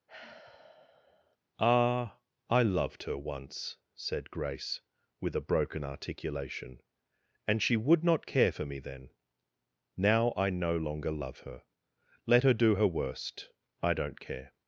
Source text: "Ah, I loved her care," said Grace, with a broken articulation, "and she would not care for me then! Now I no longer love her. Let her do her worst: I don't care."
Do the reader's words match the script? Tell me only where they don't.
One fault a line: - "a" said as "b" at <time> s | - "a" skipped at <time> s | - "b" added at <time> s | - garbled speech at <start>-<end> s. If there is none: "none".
- "care" said as "once" at 3.2 s